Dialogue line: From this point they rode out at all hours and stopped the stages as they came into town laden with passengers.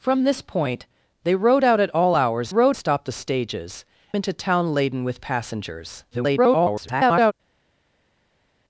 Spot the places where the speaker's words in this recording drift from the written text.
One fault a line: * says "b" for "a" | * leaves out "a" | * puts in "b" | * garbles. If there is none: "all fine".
* says "rode" for "and"
* leaves out "as they came"
* garbles